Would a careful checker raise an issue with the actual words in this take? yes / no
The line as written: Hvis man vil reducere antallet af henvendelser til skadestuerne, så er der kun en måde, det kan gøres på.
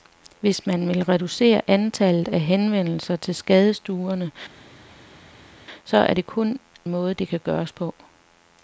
yes